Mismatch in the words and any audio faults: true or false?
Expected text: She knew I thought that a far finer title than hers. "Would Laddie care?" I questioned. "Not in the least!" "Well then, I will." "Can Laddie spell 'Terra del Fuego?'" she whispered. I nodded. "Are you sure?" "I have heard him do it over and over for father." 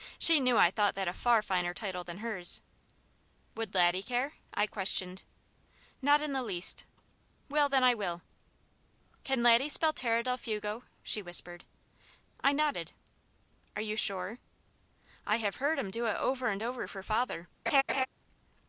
true